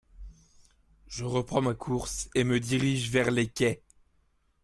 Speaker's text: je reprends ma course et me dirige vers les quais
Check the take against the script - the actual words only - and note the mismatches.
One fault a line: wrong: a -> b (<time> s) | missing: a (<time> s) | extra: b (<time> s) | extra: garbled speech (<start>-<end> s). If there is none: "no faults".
no faults